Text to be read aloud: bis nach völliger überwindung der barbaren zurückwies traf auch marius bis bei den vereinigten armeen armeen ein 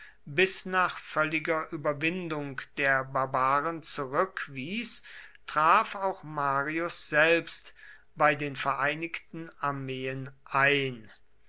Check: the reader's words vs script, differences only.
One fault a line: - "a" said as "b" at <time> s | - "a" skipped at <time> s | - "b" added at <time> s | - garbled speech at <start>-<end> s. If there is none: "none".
- "bis" said as "selbst" at 7.1 s
- "armeen" skipped at 10.3 s